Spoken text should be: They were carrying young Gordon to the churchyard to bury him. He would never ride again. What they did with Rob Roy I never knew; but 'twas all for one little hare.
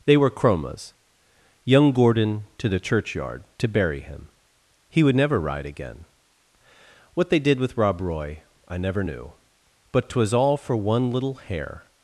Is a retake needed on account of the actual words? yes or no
yes